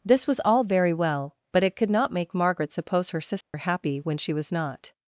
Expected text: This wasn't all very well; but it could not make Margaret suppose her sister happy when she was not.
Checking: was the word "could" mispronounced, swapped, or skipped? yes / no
no